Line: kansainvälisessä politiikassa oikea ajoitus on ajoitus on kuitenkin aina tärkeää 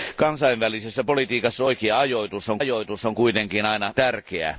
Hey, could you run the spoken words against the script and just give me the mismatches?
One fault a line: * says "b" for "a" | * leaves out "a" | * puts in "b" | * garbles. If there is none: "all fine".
all fine